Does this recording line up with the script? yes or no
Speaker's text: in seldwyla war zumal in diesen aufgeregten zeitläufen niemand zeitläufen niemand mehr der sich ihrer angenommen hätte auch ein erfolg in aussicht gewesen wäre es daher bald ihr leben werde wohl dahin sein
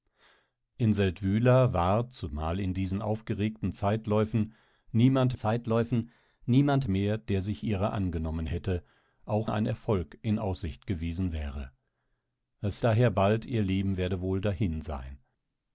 yes